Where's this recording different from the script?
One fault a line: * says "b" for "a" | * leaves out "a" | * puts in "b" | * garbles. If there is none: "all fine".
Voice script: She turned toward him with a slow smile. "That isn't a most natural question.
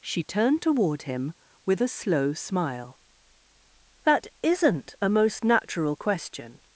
all fine